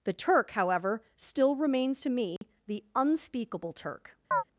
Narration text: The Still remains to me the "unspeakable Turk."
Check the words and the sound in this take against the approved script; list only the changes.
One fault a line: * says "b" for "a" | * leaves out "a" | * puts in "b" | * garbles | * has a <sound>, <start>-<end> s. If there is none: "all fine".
* puts in "Turk however"
* has a dropout, 2.4-2.4 s
* has a chirp, 4.3-4.4 s